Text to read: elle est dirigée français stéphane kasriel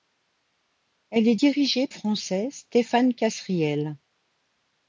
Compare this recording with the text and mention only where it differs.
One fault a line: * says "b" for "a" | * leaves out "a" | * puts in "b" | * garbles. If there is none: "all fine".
all fine